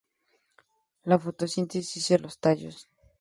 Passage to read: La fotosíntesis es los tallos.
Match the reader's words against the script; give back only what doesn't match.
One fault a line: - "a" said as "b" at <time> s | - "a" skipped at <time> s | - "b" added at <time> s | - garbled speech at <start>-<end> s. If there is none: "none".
none